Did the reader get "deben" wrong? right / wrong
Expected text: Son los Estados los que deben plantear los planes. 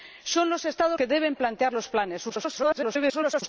right